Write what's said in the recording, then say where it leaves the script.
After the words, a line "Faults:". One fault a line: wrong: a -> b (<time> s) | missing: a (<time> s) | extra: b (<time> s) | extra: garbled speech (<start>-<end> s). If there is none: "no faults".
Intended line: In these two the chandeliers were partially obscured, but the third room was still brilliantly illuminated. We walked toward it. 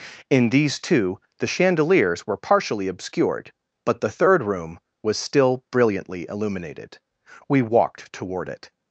In these two the chandeliers were partially obscured, but the third room was still brilliantly illuminated. We walked toward it.
Faults:
no faults